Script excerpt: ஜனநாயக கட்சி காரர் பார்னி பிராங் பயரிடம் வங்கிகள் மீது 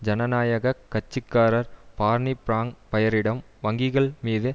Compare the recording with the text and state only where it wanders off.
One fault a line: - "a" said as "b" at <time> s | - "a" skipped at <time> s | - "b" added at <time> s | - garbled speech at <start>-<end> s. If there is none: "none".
none